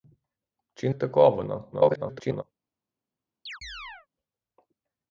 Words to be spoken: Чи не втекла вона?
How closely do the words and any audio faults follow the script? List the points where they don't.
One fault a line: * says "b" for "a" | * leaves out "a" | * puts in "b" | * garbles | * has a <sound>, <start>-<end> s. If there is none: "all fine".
* leaves out "не"
* garbles
* has a chirp, 3.5-4.1 s